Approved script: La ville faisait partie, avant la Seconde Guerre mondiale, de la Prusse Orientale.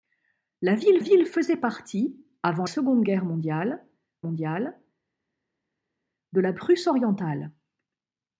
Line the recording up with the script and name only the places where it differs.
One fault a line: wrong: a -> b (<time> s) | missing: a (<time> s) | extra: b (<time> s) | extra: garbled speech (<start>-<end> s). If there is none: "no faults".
extra: ville (1.0 s)
missing: la (2.7 s)
extra: mondiale (4.2 s)